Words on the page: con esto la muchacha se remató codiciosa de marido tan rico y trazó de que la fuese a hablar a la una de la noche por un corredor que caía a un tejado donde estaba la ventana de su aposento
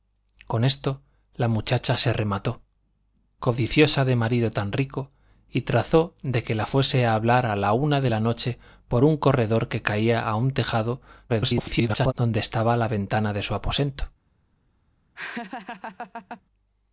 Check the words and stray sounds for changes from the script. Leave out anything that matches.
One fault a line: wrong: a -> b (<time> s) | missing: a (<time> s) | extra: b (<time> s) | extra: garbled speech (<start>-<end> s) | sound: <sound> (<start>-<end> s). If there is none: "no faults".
extra: garbled speech (11.3-12.1 s)
sound: laugh (15.1-16.4 s)